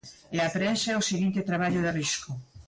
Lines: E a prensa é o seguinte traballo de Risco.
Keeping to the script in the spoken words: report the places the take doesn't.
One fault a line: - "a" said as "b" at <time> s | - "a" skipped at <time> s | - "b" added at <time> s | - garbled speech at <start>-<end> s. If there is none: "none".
none